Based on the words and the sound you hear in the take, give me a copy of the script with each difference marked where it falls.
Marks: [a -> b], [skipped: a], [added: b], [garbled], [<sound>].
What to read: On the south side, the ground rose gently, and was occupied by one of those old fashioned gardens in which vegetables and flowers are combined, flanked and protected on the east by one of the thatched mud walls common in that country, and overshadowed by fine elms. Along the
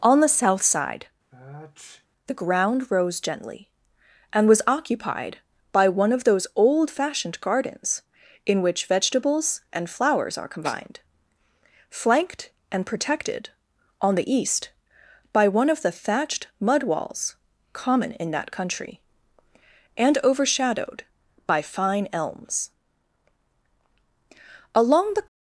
On the south side, [sniff] the ground rose gently, and was occupied by one of those old fashioned gardens in which vegetables and flowers are combined, flanked and protected on the east by one of the thatched mud walls common in that country, and overshadowed by fine elms. Along the